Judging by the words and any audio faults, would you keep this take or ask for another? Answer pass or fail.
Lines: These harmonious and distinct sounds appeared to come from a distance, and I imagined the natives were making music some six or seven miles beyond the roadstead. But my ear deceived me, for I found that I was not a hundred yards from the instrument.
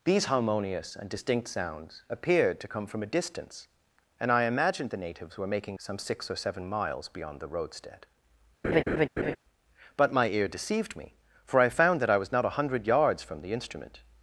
fail